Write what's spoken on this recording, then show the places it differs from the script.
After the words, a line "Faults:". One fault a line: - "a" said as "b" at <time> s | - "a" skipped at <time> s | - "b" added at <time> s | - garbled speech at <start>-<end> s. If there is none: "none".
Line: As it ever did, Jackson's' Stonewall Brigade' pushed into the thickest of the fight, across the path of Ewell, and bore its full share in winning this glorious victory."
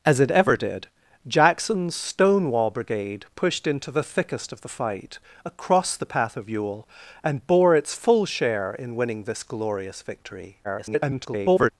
As it ever did, Jackson's' Stonewall Brigade' pushed into the thickest of the fight, across the path of Ewell, and bore its full share in winning this glorious victory." [garbled]
Faults:
- garbled speech at 10.6-11.7 s